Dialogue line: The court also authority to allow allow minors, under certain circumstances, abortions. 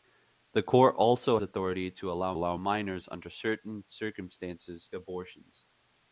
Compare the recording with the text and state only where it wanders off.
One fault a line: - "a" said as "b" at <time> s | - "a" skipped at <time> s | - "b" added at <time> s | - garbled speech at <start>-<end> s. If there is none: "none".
none